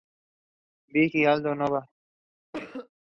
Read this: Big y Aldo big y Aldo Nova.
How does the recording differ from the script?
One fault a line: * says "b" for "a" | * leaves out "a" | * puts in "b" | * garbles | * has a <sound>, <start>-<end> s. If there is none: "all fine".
* leaves out "big y Aldo"
* has a cough, 2.5-2.9 s